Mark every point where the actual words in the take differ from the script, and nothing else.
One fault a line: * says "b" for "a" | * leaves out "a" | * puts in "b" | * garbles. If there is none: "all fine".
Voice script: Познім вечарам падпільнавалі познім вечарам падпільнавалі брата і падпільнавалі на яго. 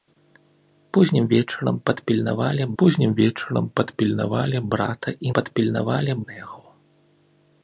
all fine